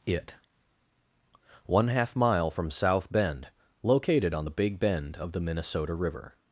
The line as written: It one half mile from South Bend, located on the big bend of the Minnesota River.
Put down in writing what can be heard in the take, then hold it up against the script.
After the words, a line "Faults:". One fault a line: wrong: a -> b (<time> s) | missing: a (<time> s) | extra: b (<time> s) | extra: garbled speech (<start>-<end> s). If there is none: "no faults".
It one half mile from South Bend, located on the big bend of the Minnesota River.
Faults:
no faults